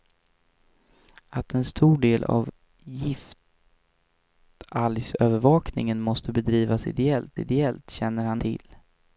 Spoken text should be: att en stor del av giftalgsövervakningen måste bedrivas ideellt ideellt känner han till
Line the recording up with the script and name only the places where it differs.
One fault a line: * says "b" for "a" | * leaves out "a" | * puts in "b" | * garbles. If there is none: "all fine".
all fine